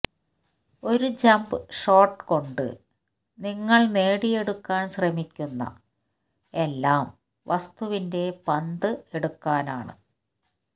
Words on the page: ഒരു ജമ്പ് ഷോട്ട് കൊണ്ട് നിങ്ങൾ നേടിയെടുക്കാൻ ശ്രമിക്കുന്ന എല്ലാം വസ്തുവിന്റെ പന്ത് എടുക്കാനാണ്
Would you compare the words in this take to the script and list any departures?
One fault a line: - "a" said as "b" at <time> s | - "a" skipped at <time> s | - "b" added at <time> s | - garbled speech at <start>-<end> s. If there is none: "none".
none